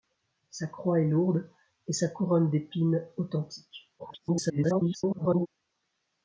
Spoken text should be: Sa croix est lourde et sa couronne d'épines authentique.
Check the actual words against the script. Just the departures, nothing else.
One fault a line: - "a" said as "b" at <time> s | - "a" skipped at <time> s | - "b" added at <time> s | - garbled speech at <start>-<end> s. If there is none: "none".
- garbled speech at 4.0-5.5 s